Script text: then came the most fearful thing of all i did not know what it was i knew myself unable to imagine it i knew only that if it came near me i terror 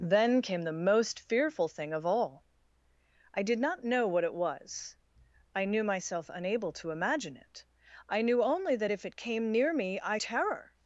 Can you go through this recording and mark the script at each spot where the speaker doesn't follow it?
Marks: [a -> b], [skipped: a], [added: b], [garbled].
then came the most fearful thing of all i did not know what it was i knew myself unable to imagine it i knew only that if it came near me i terror